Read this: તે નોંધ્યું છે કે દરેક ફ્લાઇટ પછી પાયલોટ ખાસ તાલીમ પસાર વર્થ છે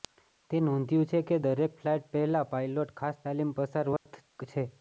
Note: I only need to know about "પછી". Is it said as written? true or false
false